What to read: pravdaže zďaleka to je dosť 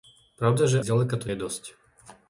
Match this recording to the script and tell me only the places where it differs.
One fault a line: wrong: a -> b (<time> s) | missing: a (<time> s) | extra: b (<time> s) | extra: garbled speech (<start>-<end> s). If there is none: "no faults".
no faults